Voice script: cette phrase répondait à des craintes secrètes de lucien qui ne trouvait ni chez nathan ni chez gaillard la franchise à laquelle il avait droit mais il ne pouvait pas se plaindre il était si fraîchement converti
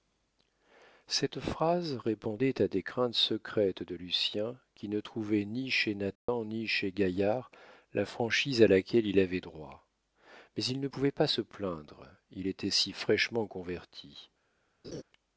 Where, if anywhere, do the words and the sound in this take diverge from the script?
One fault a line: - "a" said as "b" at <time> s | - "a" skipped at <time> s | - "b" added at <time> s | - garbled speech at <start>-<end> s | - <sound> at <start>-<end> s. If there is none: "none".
- dropout at 6.2-6.3 s
- laugh at 14.8-15.0 s